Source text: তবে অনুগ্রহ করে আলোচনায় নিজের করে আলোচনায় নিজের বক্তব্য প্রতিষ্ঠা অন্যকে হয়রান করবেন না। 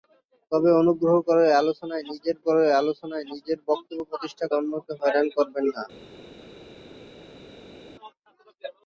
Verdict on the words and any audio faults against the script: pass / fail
pass